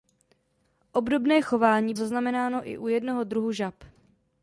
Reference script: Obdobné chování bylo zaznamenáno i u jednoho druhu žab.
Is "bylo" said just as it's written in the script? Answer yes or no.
no